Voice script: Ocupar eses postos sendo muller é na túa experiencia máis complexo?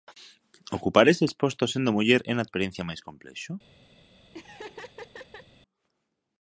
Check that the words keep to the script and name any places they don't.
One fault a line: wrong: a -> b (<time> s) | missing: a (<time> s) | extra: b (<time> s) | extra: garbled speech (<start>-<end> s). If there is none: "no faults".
missing: túa (2.5 s)